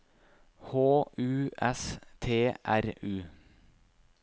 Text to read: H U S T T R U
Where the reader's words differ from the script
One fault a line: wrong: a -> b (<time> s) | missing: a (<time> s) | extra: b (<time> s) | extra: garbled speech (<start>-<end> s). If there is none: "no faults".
missing: T (2.5 s)